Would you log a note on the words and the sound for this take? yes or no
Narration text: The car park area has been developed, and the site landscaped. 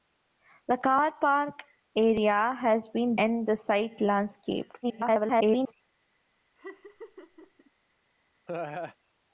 yes